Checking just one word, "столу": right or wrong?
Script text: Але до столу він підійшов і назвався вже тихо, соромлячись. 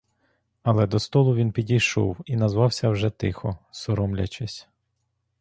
right